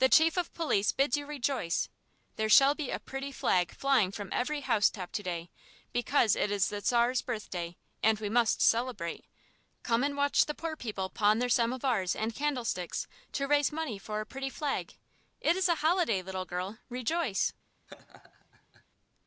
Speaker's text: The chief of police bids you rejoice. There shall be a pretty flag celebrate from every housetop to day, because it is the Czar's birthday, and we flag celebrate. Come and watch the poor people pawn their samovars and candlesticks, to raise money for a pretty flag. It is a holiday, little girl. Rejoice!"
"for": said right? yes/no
yes